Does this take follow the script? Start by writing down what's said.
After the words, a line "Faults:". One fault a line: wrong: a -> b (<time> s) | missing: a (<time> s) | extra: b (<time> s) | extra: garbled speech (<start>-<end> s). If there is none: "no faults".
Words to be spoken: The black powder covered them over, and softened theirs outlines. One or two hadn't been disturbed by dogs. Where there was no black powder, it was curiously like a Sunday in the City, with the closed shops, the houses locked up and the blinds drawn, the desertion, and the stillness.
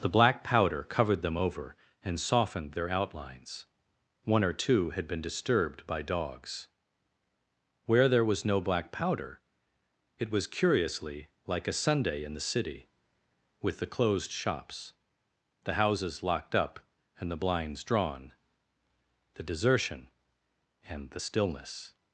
The black powder covered them over, and softened their outlines. One or two had been disturbed by dogs. Where there was no black powder, it was curiously like a Sunday in the City, with the closed shops, the houses locked up and the blinds drawn, the desertion, and the stillness.
Faults:
wrong: theirs -> their (2.7 s)
wrong: hadn't -> had (4.9 s)